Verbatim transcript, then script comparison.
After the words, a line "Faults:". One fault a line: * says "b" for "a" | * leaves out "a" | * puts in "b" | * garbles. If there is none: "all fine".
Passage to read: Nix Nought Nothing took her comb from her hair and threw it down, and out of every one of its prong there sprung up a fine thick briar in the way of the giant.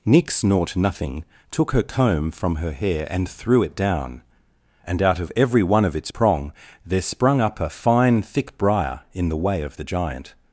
Nix Nought Nothing took her comb from her hair and threw it down, and out of every one of its prong there sprung up a fine thick briar in the way of the giant.
Faults:
all fine